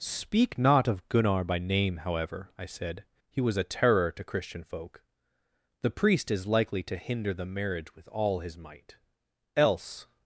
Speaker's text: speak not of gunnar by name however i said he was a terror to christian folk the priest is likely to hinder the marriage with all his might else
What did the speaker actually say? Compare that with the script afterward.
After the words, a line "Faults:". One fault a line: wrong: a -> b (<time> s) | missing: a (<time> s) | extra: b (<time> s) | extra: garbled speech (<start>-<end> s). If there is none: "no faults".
speak not of gunnar by name however i said he was a terror to christian folk the priest is likely to hinder the marriage with all his might else
Faults:
no faults